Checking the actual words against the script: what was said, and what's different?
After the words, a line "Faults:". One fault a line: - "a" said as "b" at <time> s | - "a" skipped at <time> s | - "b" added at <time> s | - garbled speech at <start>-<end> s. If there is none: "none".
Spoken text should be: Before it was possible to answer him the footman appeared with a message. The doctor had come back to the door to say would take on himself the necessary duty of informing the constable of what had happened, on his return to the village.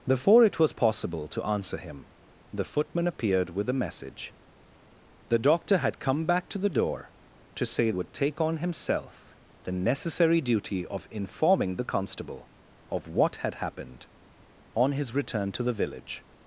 Before it was possible to answer him the footman appeared with a message. The doctor had come back to the door to say would take on himself the necessary duty of informing the constable of what had happened, on his return to the village.
Faults:
none